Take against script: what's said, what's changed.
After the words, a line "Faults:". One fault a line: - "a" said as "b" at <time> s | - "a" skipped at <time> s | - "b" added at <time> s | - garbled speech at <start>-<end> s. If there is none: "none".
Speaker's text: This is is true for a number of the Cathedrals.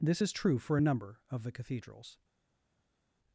This is true for a number of the Cathedrals.
Faults:
- "is" skipped at 0.3 s